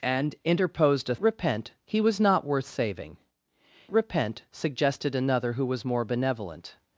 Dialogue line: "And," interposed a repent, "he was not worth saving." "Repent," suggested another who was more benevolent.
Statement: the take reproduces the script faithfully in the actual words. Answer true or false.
true